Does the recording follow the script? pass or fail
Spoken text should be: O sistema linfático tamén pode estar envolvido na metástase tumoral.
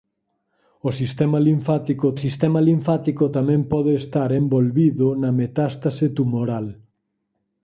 fail